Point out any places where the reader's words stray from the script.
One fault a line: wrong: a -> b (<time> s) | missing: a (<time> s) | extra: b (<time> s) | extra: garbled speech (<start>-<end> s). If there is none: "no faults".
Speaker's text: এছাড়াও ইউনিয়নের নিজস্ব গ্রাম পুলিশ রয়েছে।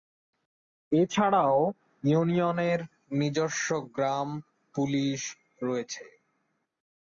no faults